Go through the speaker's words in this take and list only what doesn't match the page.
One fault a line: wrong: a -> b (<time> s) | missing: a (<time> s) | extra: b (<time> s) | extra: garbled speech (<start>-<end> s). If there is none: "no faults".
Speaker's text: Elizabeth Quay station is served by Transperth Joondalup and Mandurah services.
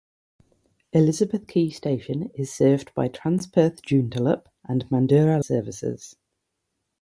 no faults